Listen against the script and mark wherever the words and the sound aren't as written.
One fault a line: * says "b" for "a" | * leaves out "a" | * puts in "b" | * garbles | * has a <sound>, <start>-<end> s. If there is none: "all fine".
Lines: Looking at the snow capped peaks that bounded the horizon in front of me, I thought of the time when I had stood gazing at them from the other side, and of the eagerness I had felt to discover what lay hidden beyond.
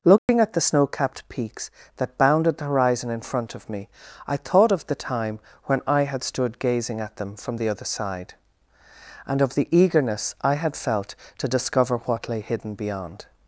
* has a dropout, 0.2-0.3 s